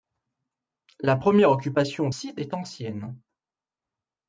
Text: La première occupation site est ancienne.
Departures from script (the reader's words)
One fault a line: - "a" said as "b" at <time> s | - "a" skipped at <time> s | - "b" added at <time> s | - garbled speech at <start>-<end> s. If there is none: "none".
none